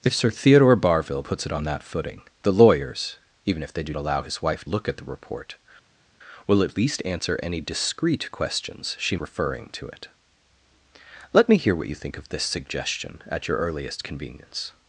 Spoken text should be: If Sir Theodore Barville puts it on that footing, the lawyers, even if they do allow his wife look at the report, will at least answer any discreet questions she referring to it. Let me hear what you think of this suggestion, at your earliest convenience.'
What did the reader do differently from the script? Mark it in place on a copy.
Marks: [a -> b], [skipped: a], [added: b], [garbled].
If Sir Theodore Barville puts it on that footing, the lawyers, even if they do allow his wife look at the report, will at least answer any discreet questions she referring to it. Let me hear what you think of this suggestion, at your earliest convenience.'